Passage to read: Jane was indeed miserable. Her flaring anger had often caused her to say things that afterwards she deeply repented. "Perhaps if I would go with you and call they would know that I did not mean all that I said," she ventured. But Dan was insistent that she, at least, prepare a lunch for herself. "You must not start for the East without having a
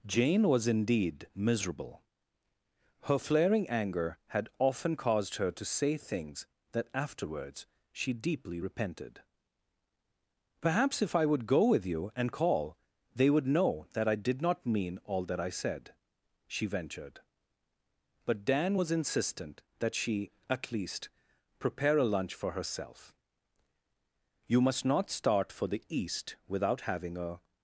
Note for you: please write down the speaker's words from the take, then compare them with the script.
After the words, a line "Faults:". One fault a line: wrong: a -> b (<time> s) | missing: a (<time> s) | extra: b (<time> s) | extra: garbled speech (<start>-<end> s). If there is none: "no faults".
Jane was indeed miserable. Her flaring anger had often caused her to say things that afterwards she deeply repented. "Perhaps if I would go with you and call they would know that I did not mean all that I said," she ventured. But Dan was insistent that she, at least, prepare a lunch for herself. "You must not start for the East without having a
Faults:
no faults